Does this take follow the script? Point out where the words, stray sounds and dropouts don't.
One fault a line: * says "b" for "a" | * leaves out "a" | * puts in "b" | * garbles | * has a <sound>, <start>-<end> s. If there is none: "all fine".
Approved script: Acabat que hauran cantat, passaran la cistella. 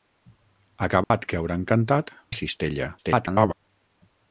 * has a dropout, 1.0-1.1 s
* leaves out "passaran"
* garbles